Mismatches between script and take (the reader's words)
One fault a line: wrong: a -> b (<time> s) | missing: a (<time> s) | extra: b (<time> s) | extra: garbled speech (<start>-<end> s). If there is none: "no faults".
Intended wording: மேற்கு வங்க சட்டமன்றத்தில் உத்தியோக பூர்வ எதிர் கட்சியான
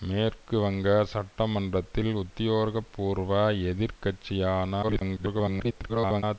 extra: garbled speech (4.8-6.2 s)